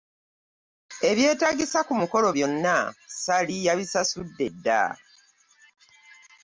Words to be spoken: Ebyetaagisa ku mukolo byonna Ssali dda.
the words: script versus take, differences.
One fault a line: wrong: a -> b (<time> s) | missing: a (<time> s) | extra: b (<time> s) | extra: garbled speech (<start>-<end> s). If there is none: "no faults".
extra: yabisasudde (3.7 s)